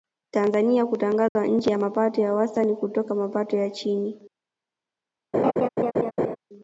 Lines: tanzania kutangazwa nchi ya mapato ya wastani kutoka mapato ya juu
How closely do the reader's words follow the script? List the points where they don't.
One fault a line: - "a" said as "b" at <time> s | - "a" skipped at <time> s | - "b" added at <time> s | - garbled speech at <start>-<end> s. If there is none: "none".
- "juu" said as "chini" at 3.7 s